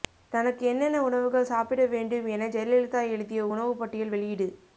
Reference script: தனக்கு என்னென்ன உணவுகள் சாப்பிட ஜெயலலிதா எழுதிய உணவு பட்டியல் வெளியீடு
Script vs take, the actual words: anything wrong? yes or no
yes